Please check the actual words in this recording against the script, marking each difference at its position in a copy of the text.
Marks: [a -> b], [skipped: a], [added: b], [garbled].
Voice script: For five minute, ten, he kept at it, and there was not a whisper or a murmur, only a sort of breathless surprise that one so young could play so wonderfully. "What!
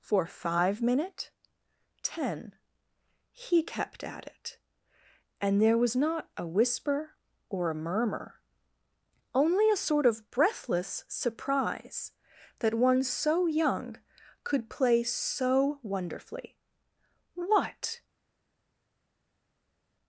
For five minute, ten, he kept at it, and there was not a whisper or a murmur, only a sort of breathless surprise that one so young could play so wonderfully. "What!